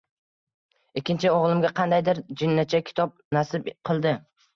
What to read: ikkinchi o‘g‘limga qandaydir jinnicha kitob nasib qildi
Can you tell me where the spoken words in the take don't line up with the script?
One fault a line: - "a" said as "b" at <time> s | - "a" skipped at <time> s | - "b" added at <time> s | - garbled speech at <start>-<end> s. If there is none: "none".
none